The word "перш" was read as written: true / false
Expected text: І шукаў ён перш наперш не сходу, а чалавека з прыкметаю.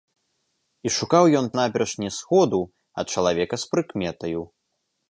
false